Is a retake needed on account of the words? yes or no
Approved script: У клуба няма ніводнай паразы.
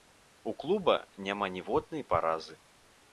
no